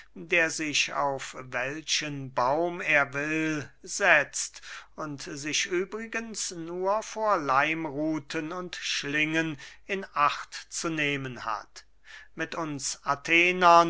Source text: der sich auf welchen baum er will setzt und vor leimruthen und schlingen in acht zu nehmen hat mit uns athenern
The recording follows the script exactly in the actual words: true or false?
false